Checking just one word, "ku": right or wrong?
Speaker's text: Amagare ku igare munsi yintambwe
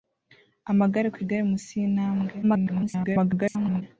right